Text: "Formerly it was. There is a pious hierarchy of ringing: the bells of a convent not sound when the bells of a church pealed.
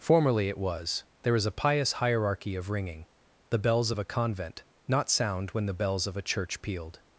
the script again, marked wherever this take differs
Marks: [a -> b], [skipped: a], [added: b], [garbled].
"Formerly it was. There is a pious hierarchy of ringing: the bells of a convent not sound when the bells of a church pealed.